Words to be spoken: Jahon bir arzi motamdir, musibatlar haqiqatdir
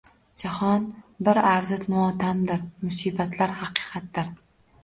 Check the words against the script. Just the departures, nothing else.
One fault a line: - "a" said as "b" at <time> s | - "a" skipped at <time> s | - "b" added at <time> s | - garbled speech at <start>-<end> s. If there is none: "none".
none